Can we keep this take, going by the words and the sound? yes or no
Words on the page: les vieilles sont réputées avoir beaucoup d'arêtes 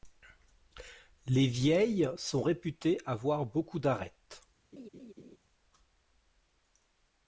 no